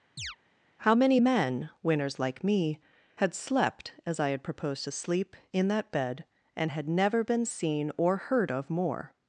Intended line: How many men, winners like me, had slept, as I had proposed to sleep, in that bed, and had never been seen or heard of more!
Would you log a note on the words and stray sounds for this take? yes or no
yes